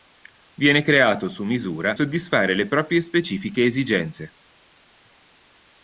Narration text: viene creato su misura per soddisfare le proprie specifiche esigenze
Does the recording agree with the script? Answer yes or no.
no